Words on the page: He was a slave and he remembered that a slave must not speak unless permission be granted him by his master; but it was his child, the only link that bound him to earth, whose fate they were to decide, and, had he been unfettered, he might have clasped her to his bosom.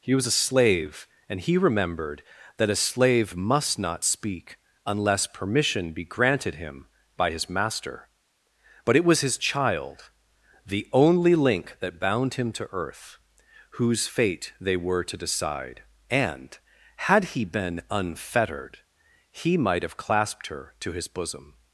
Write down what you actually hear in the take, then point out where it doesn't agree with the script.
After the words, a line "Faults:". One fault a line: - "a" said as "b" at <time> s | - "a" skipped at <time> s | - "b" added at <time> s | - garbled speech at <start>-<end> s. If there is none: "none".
He was a slave and he remembered that a slave must not speak unless permission be granted him by his master; but it was his child, the only link that bound him to earth, whose fate they were to decide, and, had he been unfettered, he might have clasped her to his bosom.
Faults:
none